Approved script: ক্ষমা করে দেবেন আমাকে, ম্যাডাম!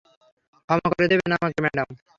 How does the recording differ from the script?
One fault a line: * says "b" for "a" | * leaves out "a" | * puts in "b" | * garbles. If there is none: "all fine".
all fine